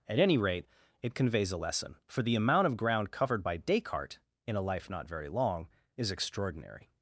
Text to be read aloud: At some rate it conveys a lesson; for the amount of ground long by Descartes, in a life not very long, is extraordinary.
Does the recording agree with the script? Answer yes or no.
no